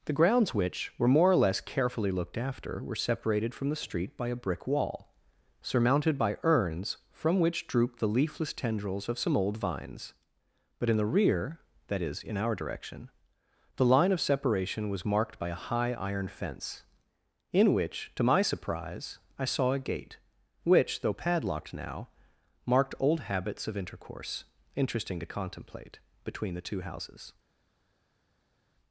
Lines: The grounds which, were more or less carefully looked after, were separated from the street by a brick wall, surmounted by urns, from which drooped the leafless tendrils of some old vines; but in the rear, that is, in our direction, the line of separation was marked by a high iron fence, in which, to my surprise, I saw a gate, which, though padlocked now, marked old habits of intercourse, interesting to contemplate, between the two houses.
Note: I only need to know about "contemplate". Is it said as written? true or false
true